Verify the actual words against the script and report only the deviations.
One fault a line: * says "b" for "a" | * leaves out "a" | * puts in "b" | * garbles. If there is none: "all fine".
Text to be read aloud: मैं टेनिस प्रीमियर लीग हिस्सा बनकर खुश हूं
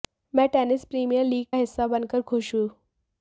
all fine